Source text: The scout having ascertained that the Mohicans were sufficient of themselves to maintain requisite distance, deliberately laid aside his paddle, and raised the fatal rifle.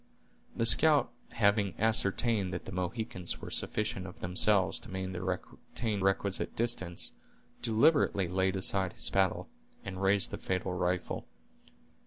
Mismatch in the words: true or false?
false